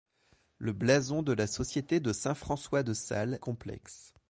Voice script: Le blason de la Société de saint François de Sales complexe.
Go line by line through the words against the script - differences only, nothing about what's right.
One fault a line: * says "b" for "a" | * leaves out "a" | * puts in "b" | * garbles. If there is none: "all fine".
all fine